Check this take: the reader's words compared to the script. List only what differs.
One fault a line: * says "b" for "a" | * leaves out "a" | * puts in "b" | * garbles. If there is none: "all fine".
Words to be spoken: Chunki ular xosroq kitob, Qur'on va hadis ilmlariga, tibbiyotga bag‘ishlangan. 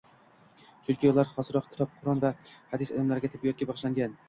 all fine